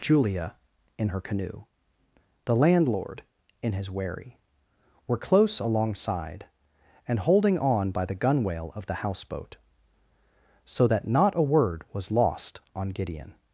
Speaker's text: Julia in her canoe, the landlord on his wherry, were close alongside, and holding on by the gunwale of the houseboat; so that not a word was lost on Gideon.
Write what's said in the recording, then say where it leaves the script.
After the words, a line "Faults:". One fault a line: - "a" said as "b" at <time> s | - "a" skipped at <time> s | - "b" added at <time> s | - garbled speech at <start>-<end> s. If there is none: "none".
Julia in her canoe, the landlord in his wherry, were close alongside, and holding on by the gunwale of the houseboat; so that not a word was lost on Gideon.
Faults:
- "on" said as "in" at 3.6 s